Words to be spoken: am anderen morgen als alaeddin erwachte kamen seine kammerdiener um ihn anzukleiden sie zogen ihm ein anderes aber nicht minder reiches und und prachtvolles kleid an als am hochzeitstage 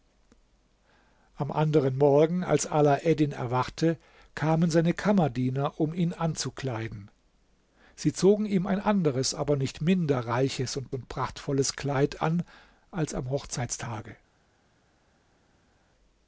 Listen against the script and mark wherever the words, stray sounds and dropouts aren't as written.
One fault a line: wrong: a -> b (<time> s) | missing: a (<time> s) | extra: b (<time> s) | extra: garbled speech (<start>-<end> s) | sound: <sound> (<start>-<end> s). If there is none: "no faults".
no faults